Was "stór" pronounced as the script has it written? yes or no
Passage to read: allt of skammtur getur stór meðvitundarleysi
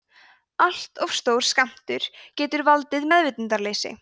no